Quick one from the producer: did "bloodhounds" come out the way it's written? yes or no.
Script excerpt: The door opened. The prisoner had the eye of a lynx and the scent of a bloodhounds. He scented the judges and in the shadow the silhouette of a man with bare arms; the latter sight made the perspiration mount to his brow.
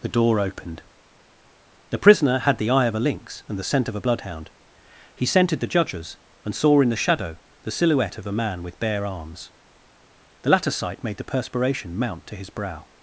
no